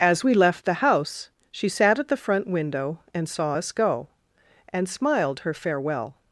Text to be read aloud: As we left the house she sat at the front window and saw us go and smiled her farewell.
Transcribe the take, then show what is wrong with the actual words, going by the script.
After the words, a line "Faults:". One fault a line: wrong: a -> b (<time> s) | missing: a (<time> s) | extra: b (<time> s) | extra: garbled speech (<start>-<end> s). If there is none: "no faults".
As we left the house she sat at the front window and saw us go and smiled her farewell.
Faults:
no faults